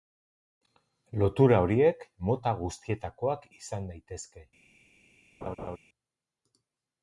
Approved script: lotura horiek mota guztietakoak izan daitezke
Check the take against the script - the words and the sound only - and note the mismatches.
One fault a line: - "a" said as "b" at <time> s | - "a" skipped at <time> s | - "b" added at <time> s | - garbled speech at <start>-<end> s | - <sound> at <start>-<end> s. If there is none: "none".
- laugh at 5.4-5.8 s